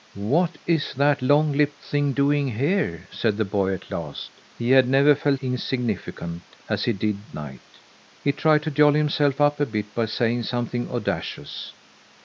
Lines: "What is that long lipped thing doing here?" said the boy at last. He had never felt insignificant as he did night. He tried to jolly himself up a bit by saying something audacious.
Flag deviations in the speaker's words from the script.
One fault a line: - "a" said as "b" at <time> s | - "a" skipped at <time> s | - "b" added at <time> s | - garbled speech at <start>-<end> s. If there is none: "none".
none